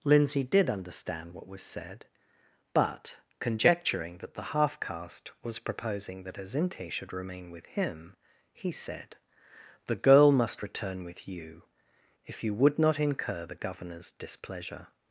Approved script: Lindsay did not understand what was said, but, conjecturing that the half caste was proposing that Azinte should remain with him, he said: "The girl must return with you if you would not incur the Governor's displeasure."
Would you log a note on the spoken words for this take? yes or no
yes